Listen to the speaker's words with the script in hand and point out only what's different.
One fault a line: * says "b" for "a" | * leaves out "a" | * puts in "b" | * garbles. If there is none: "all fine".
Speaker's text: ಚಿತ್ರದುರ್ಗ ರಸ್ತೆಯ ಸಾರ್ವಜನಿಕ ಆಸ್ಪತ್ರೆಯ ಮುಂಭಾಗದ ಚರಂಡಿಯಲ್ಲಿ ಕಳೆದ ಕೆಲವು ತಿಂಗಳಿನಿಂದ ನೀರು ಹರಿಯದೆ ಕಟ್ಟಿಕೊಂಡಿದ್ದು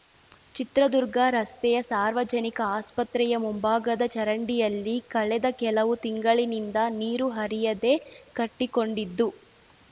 all fine